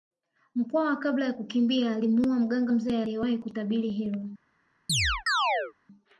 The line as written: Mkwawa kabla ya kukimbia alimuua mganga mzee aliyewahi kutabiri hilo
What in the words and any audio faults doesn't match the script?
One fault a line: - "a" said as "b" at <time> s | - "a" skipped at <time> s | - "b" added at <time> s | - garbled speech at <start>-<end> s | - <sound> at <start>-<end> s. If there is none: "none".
- chirp at 4.9-5.7 s